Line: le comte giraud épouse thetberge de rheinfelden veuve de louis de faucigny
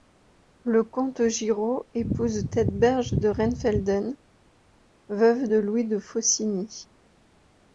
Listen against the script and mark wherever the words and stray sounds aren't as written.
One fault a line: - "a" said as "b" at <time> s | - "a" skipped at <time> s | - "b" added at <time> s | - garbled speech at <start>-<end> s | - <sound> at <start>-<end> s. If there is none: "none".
none